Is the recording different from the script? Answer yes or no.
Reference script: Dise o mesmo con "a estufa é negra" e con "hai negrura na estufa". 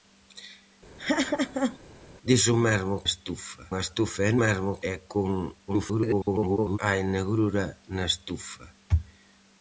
yes